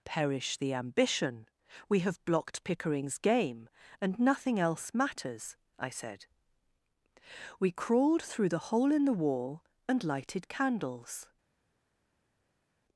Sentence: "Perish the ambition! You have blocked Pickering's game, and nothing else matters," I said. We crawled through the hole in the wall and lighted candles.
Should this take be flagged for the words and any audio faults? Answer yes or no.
yes